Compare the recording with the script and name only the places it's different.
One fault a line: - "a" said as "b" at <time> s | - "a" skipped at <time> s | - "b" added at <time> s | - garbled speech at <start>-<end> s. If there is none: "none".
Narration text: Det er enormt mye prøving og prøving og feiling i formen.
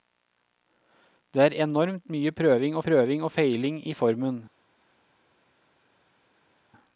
none